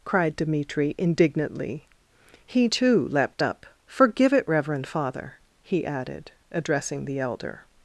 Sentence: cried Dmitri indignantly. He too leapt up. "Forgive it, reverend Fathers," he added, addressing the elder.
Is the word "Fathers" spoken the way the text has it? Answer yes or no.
no